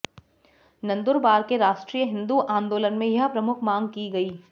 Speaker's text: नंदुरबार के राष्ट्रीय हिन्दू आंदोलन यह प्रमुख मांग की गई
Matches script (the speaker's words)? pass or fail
fail